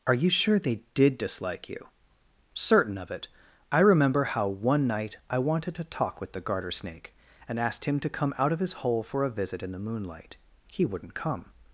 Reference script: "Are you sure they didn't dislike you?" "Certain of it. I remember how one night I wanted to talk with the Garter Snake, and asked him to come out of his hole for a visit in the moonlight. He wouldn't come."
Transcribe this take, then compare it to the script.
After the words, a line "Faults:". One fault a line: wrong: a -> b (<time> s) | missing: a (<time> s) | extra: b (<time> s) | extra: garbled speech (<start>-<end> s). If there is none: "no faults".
"Are you sure they did dislike you?" "Certain of it. I remember how one night I wanted to talk with the Garter Snake, and asked him to come out of his hole for a visit in the moonlight. He wouldn't come."
Faults:
wrong: didn't -> did (0.9 s)